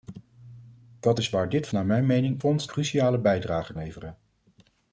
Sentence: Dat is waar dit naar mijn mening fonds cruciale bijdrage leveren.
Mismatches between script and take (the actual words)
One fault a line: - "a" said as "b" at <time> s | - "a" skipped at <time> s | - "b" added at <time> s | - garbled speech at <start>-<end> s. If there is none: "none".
none